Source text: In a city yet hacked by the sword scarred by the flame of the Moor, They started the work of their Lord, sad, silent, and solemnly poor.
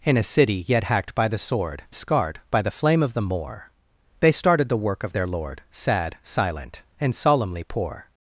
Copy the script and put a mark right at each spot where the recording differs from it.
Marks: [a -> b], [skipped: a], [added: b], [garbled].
In a city yet hacked by the sword scarred by the flame of the Moor, They started the work of their Lord, sad, silent, and solemnly poor.